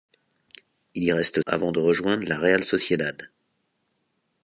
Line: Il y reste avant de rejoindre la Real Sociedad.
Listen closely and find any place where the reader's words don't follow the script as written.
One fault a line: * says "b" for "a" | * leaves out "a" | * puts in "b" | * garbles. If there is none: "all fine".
all fine